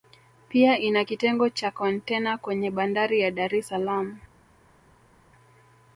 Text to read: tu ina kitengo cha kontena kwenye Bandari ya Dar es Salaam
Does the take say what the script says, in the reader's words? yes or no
no